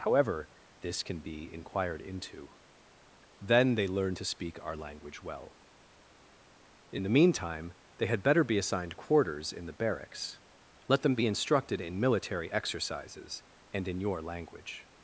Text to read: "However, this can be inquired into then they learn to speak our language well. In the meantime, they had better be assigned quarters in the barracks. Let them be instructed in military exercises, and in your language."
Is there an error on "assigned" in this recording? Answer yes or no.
no